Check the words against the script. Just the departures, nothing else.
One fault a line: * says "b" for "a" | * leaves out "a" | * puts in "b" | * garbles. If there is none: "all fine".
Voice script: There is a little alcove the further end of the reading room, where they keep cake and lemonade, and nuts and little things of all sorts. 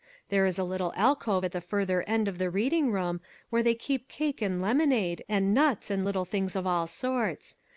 * puts in "at"